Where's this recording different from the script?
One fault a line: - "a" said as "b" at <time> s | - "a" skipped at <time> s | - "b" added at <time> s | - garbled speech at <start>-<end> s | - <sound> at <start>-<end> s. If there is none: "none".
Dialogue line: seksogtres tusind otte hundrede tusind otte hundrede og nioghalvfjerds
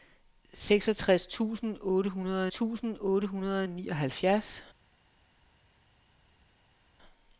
none